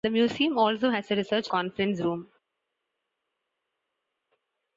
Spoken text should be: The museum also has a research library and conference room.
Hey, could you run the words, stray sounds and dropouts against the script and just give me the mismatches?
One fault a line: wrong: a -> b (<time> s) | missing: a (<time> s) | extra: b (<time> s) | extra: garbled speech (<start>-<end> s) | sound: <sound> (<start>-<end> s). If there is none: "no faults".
missing: library and (1.5 s)